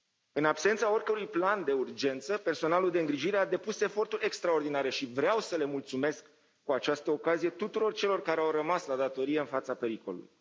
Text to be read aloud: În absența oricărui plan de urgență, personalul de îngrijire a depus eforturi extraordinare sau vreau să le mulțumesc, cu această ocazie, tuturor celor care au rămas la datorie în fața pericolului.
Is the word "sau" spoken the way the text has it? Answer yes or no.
no